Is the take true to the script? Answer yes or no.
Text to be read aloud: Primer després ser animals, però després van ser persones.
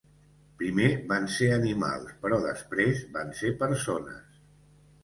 no